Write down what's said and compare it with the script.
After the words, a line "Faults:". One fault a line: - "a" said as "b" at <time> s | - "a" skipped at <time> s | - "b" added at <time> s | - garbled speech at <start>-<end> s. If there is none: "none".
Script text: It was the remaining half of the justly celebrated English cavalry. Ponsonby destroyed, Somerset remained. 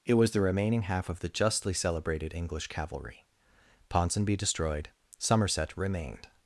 It was the remaining half of the justly celebrated English cavalry. Ponsonby destroyed, Somerset remained.
Faults:
none